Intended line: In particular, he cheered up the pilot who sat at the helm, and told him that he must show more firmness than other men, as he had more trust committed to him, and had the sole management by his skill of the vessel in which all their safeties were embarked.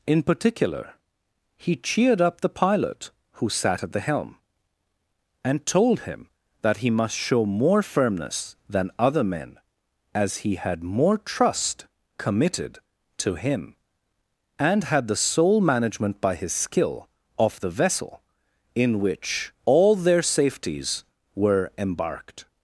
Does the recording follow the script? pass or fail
pass